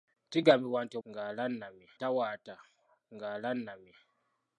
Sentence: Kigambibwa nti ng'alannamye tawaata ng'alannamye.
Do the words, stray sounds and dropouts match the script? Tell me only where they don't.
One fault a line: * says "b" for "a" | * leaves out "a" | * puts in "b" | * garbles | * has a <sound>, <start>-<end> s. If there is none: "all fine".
all fine